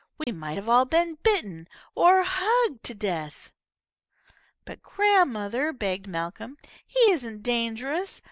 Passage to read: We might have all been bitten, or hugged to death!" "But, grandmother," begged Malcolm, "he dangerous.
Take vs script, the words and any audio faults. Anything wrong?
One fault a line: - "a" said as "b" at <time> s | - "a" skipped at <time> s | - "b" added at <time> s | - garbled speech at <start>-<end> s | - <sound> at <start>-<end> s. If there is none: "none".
- dropout at 0.2-0.3 s
- "isn't" added at 7.1 s